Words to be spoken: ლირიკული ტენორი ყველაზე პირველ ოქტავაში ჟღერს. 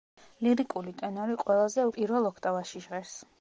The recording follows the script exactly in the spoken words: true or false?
true